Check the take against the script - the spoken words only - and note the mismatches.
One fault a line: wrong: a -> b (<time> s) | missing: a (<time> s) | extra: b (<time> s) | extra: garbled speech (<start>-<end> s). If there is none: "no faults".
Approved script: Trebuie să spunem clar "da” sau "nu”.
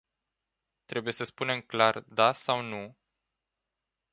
no faults